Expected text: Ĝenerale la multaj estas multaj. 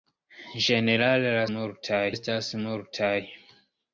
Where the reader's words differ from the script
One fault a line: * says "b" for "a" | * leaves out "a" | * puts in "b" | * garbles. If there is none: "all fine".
all fine